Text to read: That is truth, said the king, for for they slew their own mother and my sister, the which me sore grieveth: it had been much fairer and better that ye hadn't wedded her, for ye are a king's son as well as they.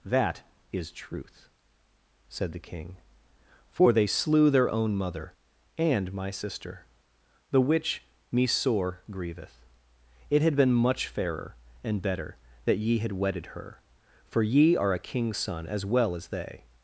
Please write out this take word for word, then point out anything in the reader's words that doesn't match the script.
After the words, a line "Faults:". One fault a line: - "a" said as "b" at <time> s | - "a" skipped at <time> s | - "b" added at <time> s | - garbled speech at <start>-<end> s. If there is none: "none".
That is truth, said the king, for they slew their own mother and my sister, the which me sore grieveth: it had been much fairer and better that ye had wedded her, for ye are a king's son as well as they.
Faults:
- "for" skipped at 3.9 s
- "hadn't" said as "had" at 13.0 s